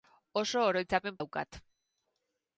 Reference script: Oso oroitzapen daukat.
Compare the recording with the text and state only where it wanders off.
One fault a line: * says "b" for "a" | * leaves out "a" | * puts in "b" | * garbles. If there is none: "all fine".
all fine